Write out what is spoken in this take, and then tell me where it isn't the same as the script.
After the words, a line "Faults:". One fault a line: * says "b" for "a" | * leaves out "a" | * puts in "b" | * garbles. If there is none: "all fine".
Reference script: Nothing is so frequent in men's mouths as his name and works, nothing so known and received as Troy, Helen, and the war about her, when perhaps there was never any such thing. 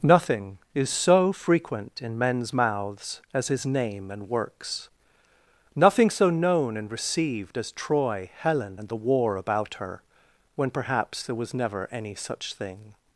Nothing is so frequent in men's mouths as his name and works, nothing so known and received as Troy, Helen, and the war about her, when perhaps there was never any such thing.
Faults:
all fine